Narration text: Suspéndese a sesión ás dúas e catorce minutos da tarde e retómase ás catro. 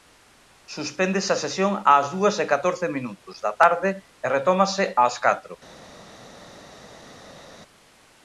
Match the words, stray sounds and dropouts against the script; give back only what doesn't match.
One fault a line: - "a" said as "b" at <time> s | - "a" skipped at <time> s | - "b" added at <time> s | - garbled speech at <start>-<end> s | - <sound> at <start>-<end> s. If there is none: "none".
none